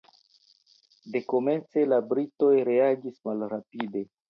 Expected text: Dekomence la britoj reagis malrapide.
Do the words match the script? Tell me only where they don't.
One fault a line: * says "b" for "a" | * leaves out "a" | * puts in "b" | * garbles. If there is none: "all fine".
all fine